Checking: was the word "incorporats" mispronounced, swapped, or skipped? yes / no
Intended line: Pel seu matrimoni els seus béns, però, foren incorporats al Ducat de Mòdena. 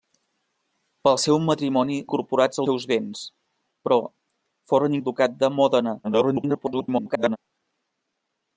yes